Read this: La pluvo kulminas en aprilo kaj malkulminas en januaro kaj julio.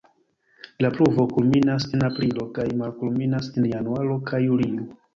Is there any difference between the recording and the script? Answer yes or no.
no